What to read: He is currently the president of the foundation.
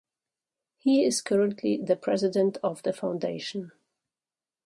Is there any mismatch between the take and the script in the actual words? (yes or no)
no